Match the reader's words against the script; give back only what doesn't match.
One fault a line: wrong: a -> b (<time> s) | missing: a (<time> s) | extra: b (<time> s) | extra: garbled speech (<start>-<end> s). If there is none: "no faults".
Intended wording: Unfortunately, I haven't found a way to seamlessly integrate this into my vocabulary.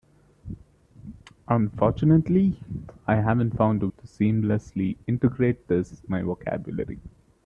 missing: way (3.9 s)
missing: into (6.0 s)